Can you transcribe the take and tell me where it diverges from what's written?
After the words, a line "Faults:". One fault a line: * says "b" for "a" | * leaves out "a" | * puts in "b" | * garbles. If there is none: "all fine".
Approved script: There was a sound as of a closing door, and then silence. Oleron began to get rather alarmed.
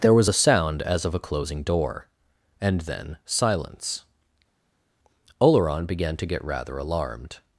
There was a sound as of a closing door, and then silence. Oleron began to get rather alarmed.
Faults:
all fine